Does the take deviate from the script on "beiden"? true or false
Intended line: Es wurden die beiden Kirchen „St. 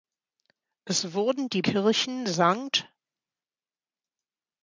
true